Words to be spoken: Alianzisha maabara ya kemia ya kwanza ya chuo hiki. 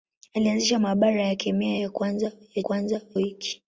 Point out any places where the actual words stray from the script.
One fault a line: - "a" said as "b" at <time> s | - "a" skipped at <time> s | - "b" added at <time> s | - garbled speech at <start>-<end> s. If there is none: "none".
- "chuo" said as "kwanza" at 2.6 s